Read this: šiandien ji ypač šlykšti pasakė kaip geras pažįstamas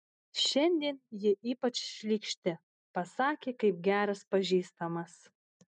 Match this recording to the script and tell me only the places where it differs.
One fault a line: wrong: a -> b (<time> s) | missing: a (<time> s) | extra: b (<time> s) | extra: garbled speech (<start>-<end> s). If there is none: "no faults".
no faults